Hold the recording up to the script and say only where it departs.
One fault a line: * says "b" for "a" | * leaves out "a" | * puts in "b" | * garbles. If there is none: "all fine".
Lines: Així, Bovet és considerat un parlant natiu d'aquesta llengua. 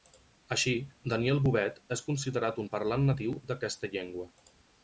* puts in "Daniel"